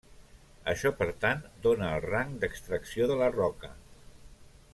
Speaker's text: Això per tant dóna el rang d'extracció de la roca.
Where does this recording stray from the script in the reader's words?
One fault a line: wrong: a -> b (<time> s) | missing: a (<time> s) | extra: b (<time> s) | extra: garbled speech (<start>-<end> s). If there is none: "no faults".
no faults